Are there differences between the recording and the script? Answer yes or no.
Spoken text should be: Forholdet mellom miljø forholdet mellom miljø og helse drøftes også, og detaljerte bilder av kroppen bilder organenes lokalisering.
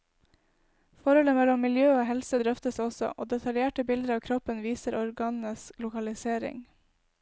yes